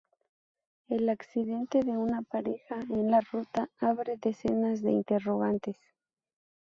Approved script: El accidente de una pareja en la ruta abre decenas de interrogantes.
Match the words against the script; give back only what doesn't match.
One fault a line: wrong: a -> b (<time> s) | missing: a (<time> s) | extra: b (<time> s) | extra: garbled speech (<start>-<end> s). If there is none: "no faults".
no faults